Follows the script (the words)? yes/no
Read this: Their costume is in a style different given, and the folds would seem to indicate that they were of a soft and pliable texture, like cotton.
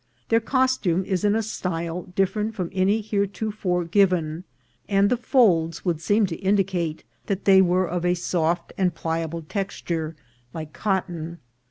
no